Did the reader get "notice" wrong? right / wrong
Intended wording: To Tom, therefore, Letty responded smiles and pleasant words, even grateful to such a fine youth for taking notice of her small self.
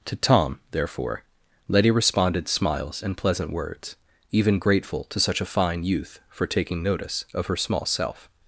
right